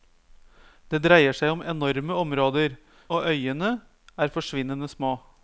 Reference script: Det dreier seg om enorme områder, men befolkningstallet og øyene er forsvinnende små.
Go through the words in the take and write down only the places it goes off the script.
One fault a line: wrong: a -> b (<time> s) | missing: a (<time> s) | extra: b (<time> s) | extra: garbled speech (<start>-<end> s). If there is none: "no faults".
missing: men befolkningstallet (2.8 s)